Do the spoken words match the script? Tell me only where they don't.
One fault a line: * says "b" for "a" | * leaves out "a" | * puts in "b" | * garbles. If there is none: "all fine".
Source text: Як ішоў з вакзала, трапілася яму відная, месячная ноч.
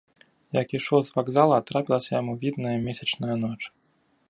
all fine